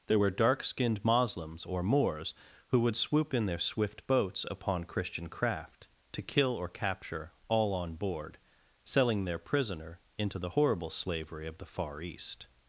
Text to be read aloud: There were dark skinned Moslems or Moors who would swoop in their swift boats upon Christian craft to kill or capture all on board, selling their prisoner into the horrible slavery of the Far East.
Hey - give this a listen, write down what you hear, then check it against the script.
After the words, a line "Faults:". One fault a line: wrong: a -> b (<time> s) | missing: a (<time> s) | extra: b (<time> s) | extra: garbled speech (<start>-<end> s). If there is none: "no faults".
There were dark skinned Moslems or Moors who would swoop in their swift boats upon Christian craft to kill or capture all on board, selling their prisoner into the horrible slavery of the Far East.
Faults:
no faults